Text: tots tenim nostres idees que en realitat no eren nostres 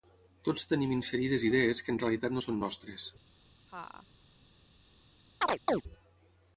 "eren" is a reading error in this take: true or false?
true